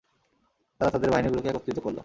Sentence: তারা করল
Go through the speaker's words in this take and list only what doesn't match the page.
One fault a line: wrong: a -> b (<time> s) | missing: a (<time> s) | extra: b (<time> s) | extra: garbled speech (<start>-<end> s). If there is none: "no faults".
extra: তাদের বাহিনীগুলোকে একত্রিত (0.9 s)